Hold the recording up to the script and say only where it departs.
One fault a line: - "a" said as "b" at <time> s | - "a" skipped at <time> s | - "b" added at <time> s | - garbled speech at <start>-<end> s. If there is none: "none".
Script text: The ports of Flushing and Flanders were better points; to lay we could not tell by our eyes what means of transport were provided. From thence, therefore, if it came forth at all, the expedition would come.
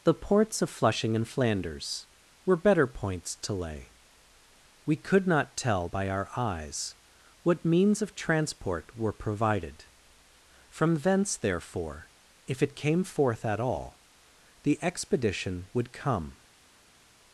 none